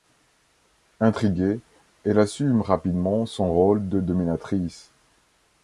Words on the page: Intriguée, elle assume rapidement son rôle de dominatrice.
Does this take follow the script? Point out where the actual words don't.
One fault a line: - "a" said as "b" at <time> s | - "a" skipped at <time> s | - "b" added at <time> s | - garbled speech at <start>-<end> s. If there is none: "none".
none